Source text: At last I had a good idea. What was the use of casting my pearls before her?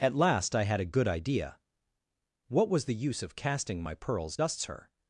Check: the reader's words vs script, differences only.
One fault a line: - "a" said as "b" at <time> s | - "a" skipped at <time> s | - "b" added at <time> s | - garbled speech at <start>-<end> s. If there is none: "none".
- "before" said as "dusts" at 4.3 s